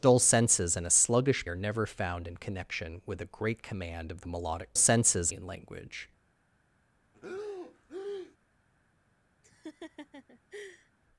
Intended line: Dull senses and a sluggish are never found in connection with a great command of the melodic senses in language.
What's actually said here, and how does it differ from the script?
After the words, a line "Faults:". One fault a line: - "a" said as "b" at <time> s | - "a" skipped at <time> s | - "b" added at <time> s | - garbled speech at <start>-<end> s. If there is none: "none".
Dull senses and a sluggish are never found in connection with a great command of the melodic senses in language.
Faults:
none